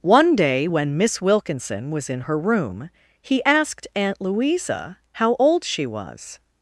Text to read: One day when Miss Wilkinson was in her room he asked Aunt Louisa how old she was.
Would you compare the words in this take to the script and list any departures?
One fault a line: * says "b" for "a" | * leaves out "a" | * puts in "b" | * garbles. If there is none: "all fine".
all fine